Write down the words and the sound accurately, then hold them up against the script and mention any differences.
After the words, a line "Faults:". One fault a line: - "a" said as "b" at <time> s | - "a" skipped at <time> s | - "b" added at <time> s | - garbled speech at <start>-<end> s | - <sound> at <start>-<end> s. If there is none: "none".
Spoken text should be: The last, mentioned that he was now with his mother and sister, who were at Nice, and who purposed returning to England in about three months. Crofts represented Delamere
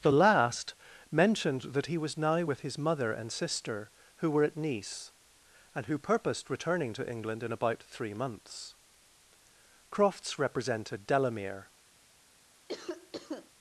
The last, mentioned that he was now with his mother and sister, who were at Nice, and who purposed returning to England in about three months. Crofts represented Delamere
Faults:
- cough at 12.7-13.5 s